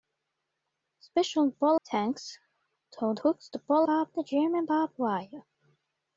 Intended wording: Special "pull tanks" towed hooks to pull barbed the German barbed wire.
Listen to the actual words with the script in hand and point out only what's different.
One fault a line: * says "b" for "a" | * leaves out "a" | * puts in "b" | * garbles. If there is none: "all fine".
all fine